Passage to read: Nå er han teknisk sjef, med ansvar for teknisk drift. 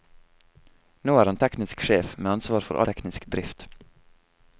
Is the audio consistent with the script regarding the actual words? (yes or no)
yes